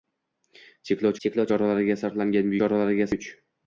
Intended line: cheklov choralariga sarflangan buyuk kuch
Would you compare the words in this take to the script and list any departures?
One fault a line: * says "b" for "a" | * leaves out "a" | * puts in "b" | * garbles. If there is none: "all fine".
* puts in "cheklov"
* says "choralariga" for "buyuk"